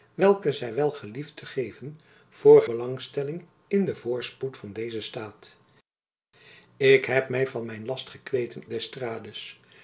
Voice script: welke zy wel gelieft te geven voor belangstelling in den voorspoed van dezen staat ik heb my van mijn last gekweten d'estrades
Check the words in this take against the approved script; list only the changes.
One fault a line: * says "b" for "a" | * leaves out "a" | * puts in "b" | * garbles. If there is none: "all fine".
all fine